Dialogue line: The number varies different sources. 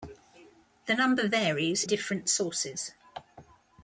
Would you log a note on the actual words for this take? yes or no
no